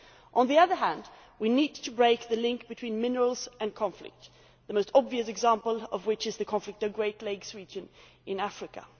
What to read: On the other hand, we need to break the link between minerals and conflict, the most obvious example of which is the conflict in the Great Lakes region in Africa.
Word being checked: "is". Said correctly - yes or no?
yes